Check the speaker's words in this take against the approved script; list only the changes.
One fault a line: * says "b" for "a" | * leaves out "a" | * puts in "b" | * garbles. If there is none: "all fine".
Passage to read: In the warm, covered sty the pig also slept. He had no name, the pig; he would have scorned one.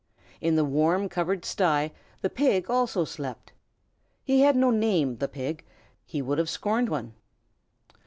all fine